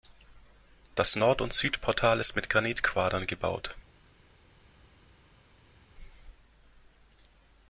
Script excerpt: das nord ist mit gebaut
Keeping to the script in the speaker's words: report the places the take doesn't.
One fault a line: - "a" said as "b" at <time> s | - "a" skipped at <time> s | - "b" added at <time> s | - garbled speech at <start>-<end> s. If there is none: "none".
- "und südportal" added at 1.4 s
- "granitquadern" added at 2.5 s